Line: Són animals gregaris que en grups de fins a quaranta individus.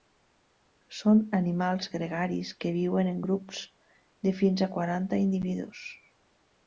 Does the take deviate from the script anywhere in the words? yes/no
yes